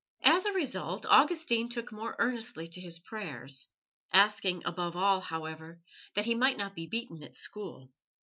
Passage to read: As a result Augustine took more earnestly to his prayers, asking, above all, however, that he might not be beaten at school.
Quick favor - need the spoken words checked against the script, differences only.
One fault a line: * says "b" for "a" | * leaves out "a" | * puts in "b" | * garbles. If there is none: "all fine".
all fine